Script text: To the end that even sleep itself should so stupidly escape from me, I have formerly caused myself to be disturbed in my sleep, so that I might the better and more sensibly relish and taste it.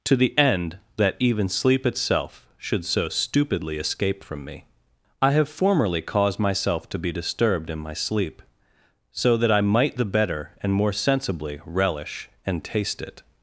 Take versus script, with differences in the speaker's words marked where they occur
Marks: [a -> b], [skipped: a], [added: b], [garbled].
To the end that even sleep itself should so stupidly escape from me, I have formerly caused myself to be disturbed in my sleep, so that I might the better and more sensibly relish and taste it.